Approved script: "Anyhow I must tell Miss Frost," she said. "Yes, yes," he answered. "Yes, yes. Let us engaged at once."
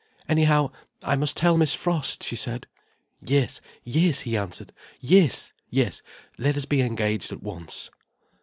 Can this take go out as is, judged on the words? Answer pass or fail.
fail